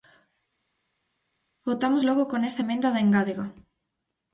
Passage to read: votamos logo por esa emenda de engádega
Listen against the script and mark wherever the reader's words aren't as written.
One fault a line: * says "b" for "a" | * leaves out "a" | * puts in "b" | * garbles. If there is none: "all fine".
* says "con" for "por"